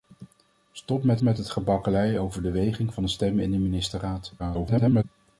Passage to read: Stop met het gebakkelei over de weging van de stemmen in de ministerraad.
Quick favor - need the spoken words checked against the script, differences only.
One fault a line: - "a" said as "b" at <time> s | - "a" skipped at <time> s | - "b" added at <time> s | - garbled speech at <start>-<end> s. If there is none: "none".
- "met" added at 1.2 s
- garbled speech at 4.4-5.0 s